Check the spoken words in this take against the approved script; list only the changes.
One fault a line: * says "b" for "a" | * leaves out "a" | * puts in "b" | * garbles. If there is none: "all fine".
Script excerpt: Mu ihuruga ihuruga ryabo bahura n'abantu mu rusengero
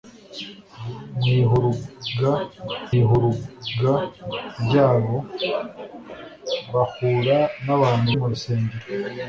all fine